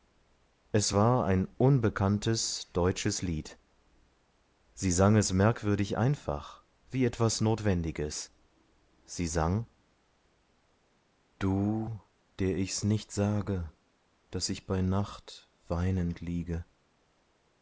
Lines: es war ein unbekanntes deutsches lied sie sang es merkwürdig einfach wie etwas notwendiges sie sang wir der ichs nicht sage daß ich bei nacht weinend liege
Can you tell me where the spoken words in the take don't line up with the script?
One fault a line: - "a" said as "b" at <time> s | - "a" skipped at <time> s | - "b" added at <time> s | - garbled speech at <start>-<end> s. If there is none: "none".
- "wir" said as "du" at 11.4 s